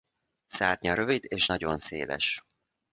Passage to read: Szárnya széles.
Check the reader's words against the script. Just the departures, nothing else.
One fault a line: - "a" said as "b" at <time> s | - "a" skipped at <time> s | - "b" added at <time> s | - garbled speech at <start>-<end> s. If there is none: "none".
- "rövid és nagyon" added at 0.9 s